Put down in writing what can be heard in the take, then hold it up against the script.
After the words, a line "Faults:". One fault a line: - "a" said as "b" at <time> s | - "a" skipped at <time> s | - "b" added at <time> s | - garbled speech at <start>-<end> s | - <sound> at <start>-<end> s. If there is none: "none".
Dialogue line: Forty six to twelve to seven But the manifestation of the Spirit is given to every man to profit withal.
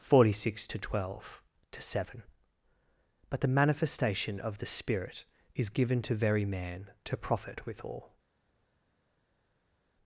Forty six to twelve to seven But the manifestation of the Spirit is given to very man to profit withal.
Faults:
- "every" said as "very" at 6.1 s